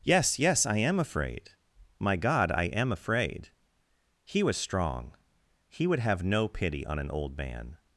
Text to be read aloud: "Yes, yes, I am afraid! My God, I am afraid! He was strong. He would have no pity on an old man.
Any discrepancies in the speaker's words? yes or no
no